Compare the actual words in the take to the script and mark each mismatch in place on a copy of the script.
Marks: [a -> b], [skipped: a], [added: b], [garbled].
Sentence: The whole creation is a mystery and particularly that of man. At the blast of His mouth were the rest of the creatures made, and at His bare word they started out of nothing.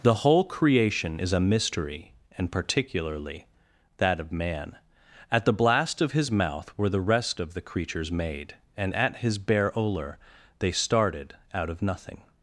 The whole creation is a mystery and particularly that of man. At the blast of His mouth were the rest of the creatures made, and at His bare [word -> olor] they started out of nothing.